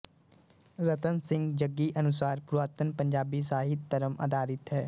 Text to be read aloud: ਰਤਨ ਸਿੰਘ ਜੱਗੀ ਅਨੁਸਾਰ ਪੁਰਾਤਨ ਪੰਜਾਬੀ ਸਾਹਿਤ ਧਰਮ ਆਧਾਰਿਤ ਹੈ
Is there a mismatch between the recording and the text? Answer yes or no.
no